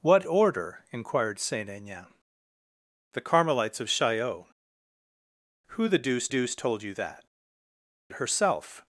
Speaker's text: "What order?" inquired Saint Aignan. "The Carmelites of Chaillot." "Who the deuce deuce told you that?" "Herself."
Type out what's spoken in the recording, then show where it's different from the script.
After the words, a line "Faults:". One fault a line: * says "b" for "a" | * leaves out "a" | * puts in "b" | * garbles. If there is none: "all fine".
"What order?" inquired Saint Aignan. "The Carmelites of Chaillot." "Who the deuce deuce told you that?" "Herself."
Faults:
all fine